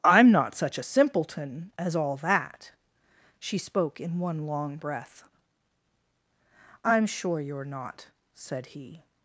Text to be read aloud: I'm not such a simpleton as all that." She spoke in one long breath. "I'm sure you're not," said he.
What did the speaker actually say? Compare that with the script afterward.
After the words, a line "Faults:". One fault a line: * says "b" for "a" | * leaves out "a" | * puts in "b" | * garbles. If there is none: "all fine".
I'm not such a simpleton as all that." She spoke in one long breath. "I'm sure you're not," said he.
Faults:
all fine